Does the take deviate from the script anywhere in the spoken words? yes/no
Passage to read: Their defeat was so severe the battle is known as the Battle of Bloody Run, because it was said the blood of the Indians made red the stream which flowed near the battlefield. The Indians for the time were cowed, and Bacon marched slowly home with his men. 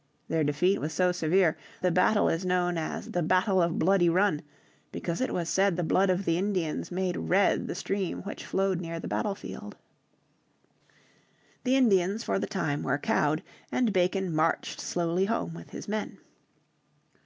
no